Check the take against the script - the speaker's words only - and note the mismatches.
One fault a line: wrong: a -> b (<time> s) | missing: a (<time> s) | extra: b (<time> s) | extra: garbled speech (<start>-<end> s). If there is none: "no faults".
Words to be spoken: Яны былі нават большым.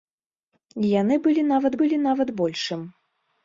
extra: былі нават (1.8 s)